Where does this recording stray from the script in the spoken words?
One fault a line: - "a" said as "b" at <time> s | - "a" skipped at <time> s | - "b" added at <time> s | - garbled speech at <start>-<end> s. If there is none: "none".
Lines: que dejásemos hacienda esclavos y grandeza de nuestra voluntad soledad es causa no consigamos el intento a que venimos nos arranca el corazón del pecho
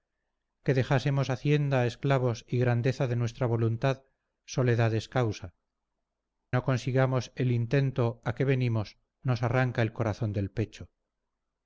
none